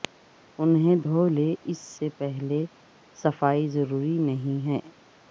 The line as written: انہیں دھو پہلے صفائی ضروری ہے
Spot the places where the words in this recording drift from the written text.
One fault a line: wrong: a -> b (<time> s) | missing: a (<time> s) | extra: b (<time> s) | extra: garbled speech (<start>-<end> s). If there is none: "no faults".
extra: لیں اس سے (1.3 s)
extra: نہیں (4.2 s)